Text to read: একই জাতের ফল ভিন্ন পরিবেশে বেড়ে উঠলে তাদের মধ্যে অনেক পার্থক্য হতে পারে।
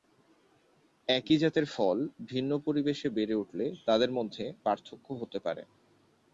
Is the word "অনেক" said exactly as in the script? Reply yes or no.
no